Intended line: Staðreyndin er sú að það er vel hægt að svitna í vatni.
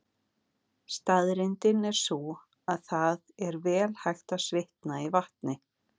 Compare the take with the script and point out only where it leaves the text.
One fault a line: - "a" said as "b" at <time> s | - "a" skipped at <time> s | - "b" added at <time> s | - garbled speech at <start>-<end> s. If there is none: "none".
none